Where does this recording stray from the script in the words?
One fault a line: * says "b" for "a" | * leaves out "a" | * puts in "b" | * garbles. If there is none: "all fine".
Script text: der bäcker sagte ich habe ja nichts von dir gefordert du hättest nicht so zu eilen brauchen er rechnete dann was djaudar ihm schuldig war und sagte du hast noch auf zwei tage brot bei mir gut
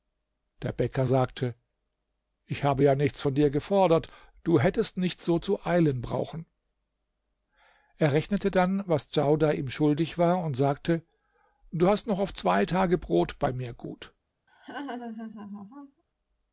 all fine